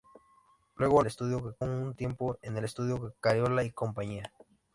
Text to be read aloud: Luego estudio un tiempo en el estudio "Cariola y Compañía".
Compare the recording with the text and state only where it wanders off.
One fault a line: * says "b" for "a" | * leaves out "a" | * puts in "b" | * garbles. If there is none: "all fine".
all fine